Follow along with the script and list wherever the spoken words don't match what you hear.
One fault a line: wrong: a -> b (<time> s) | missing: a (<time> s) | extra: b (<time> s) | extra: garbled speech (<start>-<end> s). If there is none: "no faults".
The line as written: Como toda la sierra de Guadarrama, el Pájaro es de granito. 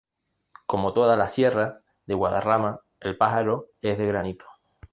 no faults